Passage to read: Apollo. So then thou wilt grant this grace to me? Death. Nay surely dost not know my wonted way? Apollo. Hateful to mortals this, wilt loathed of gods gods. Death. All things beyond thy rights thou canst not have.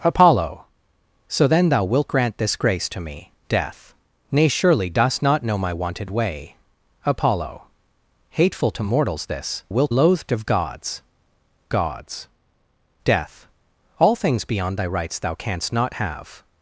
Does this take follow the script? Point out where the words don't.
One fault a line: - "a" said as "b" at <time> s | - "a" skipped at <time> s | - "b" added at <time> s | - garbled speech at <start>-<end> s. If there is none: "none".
none